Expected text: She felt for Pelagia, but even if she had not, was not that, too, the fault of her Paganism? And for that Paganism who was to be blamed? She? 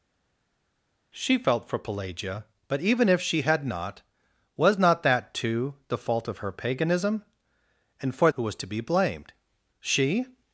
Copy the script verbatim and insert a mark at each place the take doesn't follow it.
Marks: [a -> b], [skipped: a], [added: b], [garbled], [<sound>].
She felt for Pelagia, but even if she had not, was not that, too, the fault of her Paganism? And for [skipped: that Paganism] who was to be blamed? She?